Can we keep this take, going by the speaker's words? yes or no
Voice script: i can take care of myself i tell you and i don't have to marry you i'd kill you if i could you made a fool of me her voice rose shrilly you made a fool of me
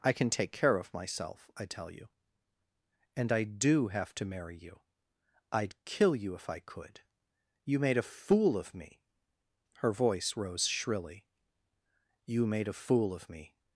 no